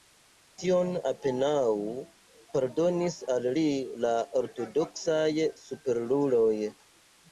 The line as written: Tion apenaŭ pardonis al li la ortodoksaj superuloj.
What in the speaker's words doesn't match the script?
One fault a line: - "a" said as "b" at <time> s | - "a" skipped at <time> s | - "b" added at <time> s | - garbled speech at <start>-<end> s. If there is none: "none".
none